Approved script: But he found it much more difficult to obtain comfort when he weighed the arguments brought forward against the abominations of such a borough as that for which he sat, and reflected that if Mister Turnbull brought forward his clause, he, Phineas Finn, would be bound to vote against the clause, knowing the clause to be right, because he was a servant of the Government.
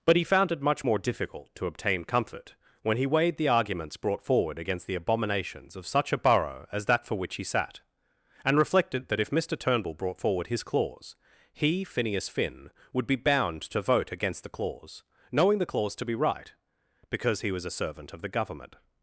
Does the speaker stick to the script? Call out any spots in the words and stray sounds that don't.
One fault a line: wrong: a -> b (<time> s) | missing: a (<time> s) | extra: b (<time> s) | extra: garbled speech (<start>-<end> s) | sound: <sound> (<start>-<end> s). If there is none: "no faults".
no faults